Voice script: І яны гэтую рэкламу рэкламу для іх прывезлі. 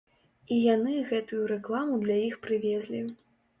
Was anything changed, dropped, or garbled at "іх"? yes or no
no